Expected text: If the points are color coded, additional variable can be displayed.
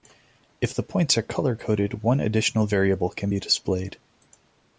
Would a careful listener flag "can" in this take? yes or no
no